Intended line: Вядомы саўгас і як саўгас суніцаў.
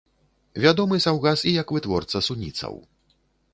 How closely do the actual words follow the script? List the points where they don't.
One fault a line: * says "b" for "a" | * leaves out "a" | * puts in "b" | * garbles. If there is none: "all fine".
* says "вытворца" for "саўгас"